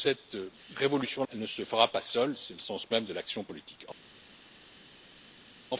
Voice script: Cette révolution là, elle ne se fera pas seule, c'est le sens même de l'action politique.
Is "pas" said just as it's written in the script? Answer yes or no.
yes